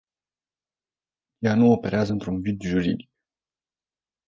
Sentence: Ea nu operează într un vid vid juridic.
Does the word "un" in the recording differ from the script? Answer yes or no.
no